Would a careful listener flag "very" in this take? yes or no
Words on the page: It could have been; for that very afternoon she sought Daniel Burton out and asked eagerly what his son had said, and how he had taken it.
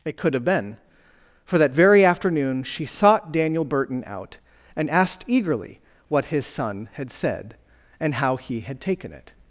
no